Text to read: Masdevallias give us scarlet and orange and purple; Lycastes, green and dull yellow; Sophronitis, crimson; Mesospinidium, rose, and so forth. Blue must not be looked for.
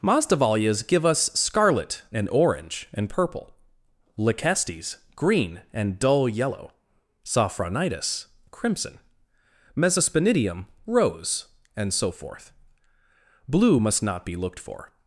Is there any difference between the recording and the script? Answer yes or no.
no